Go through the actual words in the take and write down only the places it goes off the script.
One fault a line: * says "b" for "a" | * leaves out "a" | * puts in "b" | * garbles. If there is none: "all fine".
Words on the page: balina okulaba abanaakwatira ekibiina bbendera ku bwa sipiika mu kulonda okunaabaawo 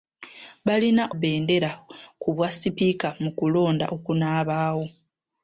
* leaves out "okulaba abanaakwatira ekibiina"